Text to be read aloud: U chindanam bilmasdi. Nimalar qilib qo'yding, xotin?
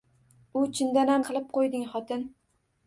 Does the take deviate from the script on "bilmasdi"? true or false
true